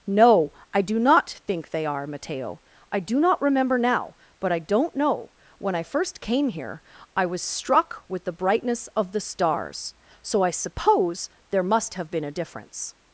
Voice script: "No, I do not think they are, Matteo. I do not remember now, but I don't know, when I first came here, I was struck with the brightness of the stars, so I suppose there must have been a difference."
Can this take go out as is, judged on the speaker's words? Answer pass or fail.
pass